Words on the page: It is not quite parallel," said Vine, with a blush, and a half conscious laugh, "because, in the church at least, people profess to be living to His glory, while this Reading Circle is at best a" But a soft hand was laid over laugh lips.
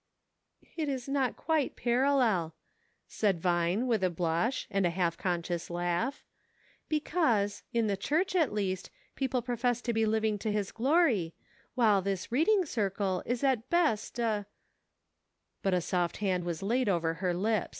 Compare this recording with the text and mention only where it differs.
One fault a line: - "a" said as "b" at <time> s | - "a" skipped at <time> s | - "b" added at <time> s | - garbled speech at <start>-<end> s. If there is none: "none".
- "laugh" said as "her" at 17.2 s